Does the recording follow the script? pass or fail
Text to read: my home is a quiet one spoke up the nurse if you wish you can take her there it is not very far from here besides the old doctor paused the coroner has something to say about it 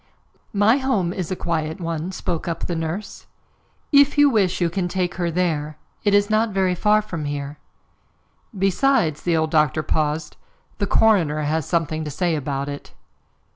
pass